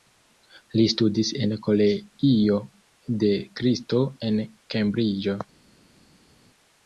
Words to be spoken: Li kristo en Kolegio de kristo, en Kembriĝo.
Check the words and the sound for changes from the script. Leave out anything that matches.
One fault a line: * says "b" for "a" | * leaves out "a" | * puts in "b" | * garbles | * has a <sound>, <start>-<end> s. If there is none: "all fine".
* says "studis" for "kristo"